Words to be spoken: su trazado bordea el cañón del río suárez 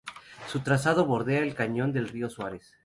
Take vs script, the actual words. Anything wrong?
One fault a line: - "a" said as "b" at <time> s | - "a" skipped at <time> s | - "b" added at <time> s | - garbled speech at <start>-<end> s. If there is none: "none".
none